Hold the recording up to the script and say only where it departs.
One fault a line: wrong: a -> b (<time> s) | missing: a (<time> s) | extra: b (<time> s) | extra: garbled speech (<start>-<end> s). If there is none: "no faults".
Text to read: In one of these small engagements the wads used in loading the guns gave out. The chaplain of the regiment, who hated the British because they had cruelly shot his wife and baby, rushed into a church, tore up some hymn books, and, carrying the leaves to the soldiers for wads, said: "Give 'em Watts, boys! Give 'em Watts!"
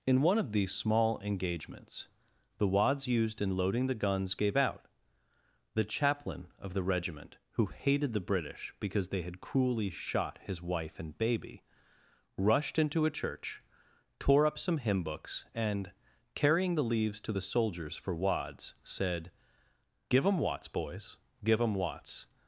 no faults